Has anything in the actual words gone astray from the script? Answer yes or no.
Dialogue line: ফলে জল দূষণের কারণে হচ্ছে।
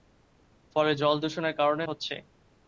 no